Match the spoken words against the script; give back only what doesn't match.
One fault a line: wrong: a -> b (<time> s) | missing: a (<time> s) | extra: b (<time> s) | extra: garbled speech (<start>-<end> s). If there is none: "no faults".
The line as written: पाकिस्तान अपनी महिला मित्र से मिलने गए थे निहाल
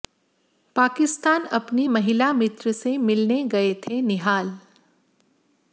no faults